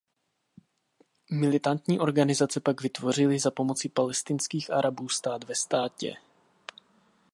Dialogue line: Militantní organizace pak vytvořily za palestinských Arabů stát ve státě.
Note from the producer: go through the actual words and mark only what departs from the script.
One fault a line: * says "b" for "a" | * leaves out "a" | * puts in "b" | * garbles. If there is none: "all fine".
* puts in "pomoci"